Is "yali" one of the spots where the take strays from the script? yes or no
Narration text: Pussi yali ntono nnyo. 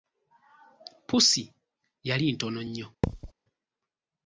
no